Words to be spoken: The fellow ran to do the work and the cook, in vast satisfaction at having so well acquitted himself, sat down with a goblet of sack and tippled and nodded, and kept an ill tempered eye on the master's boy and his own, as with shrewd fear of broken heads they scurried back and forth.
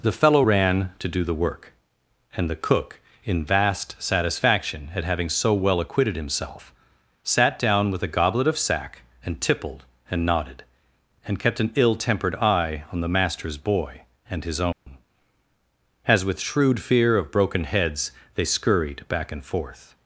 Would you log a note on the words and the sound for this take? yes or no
yes